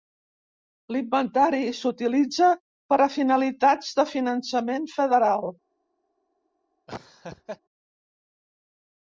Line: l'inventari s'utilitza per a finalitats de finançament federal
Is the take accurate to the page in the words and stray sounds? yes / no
no